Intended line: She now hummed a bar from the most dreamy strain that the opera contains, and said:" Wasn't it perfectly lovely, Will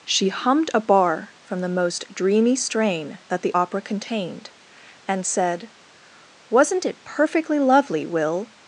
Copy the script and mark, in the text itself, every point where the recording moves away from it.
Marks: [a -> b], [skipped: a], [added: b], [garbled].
She [skipped: now] hummed a bar from the most dreamy strain that the opera [contains, -> contained] and said:" Wasn't it perfectly lovely, Will